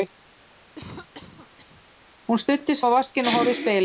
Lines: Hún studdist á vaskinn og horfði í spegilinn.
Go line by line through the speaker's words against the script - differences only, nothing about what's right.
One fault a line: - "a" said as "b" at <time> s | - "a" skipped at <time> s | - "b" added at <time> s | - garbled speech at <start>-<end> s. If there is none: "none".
none